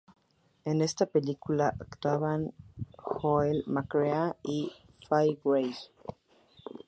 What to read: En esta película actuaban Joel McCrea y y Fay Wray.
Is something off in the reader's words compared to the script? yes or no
yes